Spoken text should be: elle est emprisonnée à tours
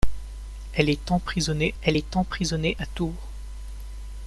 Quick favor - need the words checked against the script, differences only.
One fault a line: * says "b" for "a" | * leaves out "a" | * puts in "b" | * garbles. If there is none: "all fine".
* puts in "elle est emprisonnée"